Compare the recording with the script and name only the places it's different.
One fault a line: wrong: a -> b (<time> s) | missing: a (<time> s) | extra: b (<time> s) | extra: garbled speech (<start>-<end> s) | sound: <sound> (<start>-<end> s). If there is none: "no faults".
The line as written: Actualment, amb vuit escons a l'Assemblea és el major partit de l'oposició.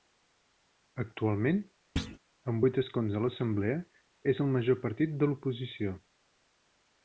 sound: thud (2.0-2.2 s)